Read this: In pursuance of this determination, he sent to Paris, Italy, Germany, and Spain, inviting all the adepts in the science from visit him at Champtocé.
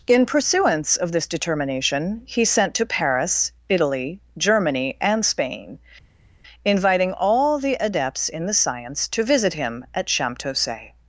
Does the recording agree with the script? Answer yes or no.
no